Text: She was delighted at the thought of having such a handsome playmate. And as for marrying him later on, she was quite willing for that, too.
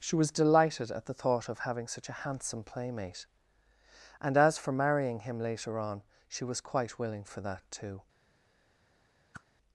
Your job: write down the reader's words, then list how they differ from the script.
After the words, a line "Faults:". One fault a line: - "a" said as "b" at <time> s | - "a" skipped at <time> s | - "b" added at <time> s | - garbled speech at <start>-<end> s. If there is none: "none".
She was delighted at the thought of having such a handsome playmate. And as for marrying him later on, she was quite willing for that, too.
Faults:
none